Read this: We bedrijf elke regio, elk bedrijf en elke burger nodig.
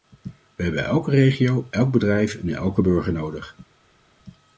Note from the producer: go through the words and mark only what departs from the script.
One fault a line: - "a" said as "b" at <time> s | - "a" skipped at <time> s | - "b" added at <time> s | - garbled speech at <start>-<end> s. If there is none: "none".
- "bedrijf" said as "hebben" at 0.6 s